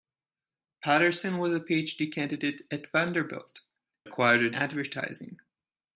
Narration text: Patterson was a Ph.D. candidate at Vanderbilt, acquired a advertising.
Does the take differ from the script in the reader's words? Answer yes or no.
no